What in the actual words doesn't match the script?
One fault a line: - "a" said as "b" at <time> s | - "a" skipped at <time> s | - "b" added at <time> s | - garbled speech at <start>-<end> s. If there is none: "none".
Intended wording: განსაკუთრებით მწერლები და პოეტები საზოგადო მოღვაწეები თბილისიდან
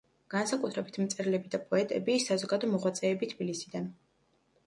none